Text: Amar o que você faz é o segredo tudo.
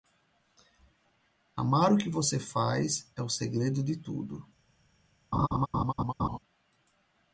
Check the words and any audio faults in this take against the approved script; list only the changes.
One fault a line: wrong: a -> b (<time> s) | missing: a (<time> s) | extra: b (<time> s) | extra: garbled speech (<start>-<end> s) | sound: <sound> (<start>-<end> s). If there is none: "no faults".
extra: de (3.8 s)
sound: laugh (5.3-6.4 s)